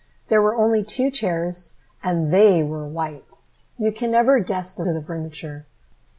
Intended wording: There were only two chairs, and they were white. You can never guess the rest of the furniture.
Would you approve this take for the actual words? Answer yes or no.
no